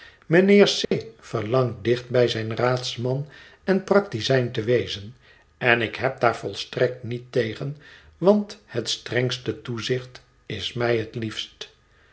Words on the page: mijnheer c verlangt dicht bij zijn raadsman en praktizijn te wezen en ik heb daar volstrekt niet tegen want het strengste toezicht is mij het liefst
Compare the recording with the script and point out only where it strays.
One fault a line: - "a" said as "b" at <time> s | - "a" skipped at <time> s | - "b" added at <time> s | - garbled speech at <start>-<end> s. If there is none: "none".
none